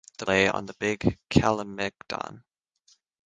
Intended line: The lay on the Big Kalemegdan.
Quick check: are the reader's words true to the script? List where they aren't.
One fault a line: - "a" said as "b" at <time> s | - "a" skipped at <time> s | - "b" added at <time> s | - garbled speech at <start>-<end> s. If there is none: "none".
none